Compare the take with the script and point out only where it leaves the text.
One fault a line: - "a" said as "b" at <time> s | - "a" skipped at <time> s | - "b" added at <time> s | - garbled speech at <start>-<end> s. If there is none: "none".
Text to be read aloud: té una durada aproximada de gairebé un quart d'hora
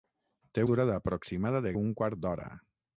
- "una" skipped at 0.6 s
- "gairebé" skipped at 1.7 s